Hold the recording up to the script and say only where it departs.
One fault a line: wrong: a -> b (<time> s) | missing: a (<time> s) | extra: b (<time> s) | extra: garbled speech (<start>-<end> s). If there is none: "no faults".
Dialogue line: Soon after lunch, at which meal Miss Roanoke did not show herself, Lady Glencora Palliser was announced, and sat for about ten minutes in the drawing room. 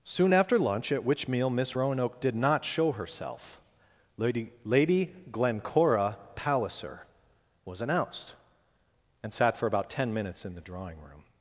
extra: Lady (4.6 s)